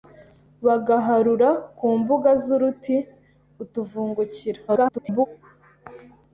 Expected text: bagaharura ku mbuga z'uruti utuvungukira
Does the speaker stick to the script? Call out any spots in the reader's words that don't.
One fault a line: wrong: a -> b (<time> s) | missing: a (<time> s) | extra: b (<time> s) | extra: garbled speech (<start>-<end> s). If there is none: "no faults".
extra: garbled speech (4.7-5.3 s)